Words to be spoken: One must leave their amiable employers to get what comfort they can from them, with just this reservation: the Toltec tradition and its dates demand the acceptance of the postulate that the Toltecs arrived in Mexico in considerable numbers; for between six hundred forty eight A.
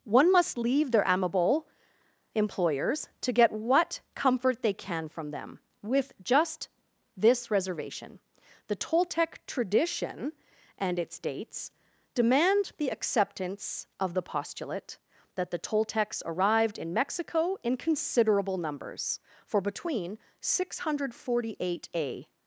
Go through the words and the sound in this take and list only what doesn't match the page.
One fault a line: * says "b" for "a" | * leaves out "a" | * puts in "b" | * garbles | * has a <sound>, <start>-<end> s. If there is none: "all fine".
all fine